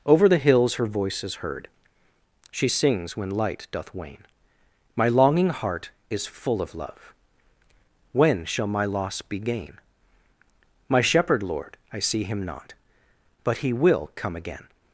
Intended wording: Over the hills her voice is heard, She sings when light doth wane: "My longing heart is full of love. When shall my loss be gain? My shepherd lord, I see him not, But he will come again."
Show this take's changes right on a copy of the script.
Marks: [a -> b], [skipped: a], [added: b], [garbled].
Over the hills her voice is heard, She sings when light doth wane: "My longing heart is full of love. When shall my loss be gain? My shepherd lord, I see him not, But he will come again."